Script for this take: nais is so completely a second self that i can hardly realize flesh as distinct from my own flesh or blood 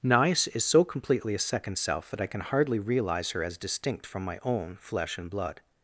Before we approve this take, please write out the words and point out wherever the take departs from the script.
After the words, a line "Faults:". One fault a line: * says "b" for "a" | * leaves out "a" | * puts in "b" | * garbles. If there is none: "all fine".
nais is so completely a second self that i can hardly realize her as distinct from my own flesh and blood
Faults:
* says "her" for "flesh"
* says "and" for "or"